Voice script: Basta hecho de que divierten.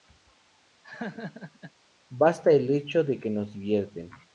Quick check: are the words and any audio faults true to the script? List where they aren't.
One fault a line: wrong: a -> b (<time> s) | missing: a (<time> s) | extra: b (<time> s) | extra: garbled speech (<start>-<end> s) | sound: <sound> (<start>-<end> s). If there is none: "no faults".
sound: laugh (0.8-1.7 s)
extra: el (2.5 s)
extra: nos (3.3 s)